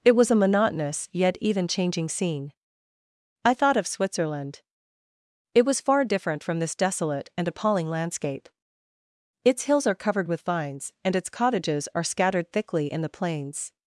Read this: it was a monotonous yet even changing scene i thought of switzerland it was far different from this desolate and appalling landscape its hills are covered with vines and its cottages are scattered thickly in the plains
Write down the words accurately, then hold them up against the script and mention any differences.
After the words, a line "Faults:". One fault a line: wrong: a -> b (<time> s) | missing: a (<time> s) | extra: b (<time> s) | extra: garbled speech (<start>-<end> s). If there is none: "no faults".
it was a monotonous yet even changing scene i thought of switzerland it was far different from this desolate and appalling landscape its hills are covered with vines and its cottages are scattered thickly in the plains
Faults:
no faults